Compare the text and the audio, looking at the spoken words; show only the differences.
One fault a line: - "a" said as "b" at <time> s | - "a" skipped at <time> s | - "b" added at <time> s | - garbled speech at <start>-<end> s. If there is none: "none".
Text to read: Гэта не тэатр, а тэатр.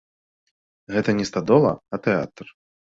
- "тэатр" said as "стадола" at 1.3 s